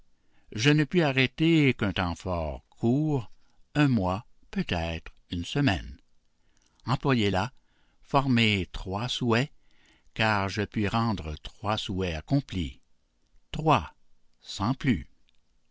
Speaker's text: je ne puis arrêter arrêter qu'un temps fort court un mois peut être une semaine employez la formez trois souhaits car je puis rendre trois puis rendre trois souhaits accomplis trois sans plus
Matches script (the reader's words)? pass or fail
fail